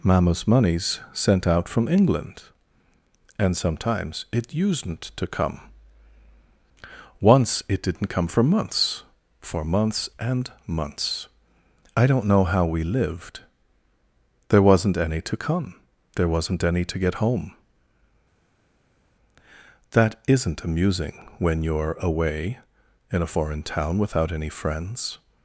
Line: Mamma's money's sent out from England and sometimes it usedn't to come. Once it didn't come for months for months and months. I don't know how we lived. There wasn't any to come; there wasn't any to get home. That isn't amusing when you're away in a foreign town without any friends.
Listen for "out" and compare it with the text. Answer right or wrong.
right